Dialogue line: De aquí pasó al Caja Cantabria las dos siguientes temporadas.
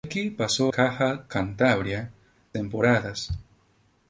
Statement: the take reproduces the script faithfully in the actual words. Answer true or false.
false